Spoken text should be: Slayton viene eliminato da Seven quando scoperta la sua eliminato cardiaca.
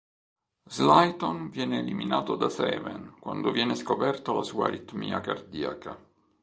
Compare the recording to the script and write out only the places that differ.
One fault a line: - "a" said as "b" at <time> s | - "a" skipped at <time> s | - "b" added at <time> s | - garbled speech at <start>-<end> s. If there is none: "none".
- "viene" added at 3.5 s
- "eliminato" said as "aritmia" at 4.7 s